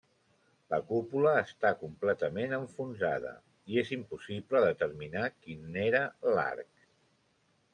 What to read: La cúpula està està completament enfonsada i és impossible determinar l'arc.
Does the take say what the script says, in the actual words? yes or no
no